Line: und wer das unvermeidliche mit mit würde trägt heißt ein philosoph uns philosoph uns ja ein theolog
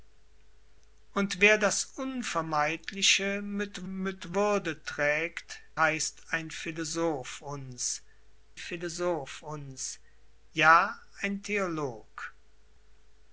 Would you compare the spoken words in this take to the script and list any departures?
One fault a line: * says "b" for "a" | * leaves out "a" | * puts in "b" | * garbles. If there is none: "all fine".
all fine